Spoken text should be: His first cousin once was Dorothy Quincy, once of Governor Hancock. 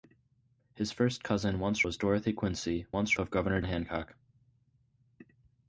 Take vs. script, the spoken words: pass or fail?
pass